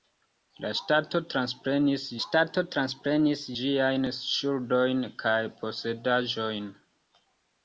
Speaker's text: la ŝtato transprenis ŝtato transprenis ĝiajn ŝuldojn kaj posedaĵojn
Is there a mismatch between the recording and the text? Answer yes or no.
no